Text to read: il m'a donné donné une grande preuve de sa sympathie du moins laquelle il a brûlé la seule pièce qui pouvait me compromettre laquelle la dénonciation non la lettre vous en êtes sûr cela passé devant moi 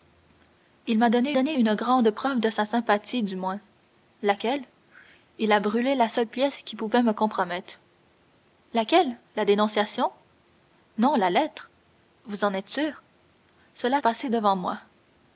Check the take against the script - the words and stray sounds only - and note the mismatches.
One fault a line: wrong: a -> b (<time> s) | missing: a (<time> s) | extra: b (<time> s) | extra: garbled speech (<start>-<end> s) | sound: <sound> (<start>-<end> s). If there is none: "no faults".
no faults